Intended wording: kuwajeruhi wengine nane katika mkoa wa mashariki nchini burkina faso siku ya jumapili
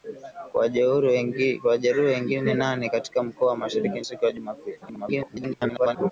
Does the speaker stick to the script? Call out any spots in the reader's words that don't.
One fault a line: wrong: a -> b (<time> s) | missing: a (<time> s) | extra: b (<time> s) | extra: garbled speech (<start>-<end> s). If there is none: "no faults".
missing: nchini burkina faso (4.0 s)
extra: garbled speech (4.8-6.1 s)